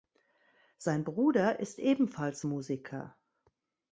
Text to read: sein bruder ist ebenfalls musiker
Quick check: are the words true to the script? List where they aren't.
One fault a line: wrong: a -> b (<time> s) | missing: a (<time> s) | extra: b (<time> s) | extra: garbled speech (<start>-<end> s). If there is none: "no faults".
no faults